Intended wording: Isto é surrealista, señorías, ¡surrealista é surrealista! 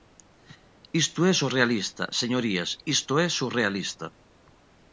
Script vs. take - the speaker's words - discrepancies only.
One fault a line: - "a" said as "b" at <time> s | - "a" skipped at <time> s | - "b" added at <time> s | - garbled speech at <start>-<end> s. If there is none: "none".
- "surrealista" said as "isto" at 2.9 s